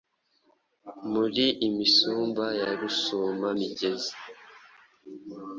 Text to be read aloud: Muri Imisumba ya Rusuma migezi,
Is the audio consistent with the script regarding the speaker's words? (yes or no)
yes